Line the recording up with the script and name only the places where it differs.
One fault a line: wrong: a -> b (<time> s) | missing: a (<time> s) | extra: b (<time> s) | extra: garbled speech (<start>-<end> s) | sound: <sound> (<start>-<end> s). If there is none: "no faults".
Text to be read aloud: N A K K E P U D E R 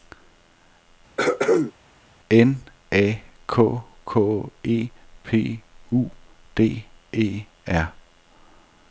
sound: throat clearing (1.2-1.7 s)